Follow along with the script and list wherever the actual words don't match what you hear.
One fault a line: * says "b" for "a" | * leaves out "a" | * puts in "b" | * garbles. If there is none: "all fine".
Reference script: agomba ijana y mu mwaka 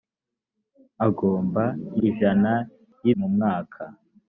all fine